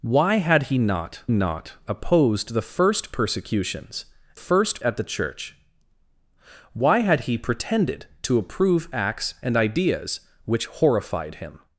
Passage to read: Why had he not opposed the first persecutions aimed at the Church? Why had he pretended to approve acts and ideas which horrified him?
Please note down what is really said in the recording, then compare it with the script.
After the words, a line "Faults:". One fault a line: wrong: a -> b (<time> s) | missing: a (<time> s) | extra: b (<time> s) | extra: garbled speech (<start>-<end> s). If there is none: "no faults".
Why had he not not opposed the first persecutions first at the Church? Why had he pretended to approve acts and ideas which horrified him?
Faults:
extra: not (1.3 s)
wrong: aimed -> first (4.3 s)